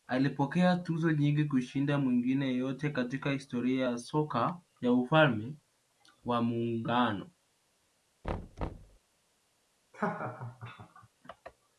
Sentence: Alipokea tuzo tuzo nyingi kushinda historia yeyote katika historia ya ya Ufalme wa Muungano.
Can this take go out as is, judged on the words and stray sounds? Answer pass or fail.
fail